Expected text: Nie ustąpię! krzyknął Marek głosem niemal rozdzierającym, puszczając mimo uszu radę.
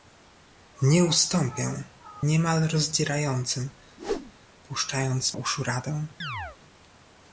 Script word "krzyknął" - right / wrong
wrong